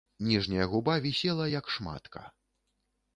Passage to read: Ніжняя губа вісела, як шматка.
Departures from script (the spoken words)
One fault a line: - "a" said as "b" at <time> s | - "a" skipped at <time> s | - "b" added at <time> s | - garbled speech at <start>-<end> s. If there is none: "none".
none